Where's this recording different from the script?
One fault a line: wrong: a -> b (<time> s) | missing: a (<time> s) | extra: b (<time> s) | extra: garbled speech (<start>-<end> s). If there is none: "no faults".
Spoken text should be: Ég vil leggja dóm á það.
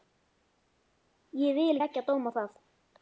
no faults